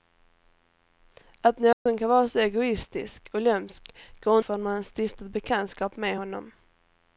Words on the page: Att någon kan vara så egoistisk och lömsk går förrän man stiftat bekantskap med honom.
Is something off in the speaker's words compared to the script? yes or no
no